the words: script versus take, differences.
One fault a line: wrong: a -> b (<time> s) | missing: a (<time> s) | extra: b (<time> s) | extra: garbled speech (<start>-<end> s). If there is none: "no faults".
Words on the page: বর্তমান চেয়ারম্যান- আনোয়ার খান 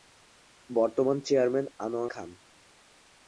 no faults